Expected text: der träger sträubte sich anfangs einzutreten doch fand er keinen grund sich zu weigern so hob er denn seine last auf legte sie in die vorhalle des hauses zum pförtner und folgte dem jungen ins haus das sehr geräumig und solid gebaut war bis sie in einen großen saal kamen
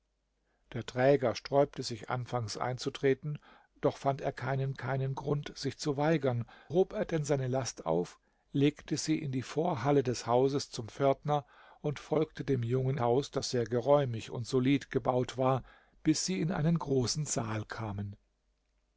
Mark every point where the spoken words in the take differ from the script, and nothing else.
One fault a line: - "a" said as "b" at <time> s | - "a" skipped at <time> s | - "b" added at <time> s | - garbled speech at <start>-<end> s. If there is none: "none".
- "keinen" added at 4.7 s
- "so" skipped at 6.5 s
- "ins" skipped at 13.0 s